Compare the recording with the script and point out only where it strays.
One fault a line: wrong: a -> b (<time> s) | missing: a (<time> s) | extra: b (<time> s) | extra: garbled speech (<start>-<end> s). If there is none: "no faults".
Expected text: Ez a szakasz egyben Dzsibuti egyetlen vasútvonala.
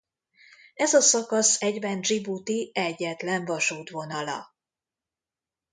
no faults